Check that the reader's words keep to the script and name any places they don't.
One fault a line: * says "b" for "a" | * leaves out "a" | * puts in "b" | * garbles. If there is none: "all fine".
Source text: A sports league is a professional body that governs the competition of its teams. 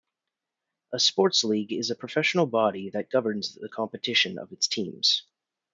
all fine